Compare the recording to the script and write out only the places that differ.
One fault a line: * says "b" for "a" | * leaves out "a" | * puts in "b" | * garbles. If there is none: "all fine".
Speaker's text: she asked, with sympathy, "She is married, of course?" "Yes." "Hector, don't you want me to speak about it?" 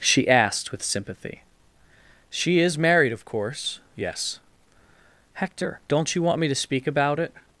all fine